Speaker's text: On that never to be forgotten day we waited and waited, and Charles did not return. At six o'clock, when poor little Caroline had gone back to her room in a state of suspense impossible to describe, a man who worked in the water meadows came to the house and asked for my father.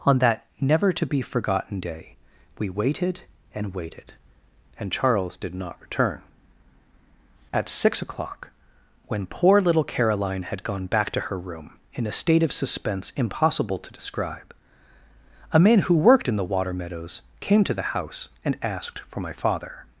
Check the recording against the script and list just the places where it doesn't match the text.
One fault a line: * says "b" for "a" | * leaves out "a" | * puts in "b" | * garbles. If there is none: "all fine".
all fine